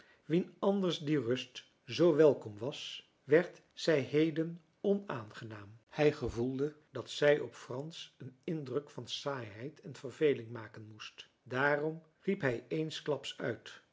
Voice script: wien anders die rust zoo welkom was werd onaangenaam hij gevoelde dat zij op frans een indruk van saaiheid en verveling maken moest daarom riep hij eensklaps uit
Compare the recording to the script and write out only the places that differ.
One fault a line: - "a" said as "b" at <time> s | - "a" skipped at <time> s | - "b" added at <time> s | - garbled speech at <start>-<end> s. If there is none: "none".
- "zij heden" added at 3.7 s